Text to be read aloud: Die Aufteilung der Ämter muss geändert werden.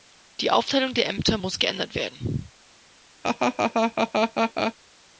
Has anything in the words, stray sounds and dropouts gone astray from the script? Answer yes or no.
yes